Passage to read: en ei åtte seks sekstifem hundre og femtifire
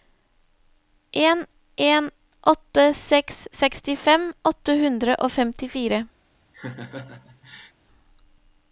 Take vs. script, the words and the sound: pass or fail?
fail